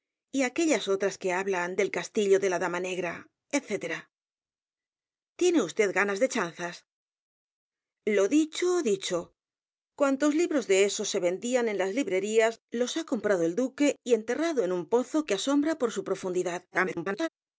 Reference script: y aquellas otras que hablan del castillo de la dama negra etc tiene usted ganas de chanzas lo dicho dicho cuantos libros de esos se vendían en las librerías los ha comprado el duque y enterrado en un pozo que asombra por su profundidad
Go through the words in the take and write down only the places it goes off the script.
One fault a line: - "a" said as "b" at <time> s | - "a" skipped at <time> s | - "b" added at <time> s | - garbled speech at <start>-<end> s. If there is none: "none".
- garbled speech at 16.7-17.3 s